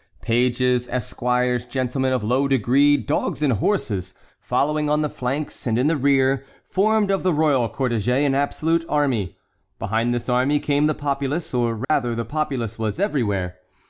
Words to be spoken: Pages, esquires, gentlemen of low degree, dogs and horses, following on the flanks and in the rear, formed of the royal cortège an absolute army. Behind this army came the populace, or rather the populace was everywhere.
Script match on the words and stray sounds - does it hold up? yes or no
no